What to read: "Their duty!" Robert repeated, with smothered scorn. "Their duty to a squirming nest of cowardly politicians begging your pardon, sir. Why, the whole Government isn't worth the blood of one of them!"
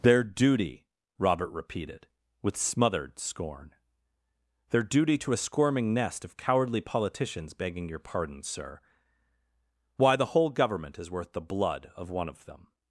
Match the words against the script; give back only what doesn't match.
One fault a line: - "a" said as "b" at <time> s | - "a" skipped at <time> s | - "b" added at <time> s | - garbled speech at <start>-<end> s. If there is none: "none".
- "isn't" said as "is" at 11.0 s